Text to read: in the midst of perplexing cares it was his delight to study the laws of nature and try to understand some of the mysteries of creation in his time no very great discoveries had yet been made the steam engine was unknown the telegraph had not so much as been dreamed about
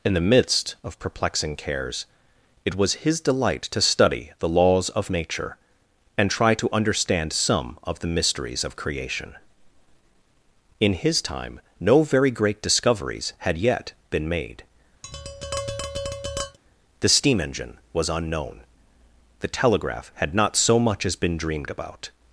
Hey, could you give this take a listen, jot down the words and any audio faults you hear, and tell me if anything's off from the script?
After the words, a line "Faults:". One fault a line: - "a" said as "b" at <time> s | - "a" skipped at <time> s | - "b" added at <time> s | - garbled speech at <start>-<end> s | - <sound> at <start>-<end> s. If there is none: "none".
in the midst of perplexing cares it was his delight to study the laws of nature and try to understand some of the mysteries of creation in his time no very great discoveries had yet been made the steam engine was unknown the telegraph had not so much as been dreamed about
Faults:
- tap at 15.0-16.6 s